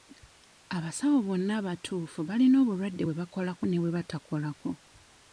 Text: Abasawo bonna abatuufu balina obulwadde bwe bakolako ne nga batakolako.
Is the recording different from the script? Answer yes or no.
yes